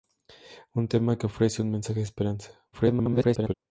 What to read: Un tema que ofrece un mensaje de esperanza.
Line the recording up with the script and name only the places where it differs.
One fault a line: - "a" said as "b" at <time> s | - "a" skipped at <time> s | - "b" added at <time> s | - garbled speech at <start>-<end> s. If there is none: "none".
- garbled speech at 2.7-3.5 s